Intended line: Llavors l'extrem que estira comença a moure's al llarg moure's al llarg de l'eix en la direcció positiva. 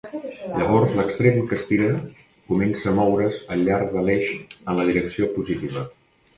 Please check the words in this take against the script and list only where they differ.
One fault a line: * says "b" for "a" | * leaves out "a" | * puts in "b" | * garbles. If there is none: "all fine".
* leaves out "moure's al llarg"